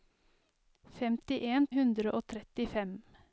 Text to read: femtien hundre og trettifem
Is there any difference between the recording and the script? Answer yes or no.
no